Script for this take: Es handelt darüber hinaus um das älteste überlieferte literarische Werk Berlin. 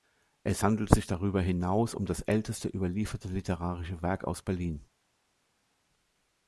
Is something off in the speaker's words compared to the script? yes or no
yes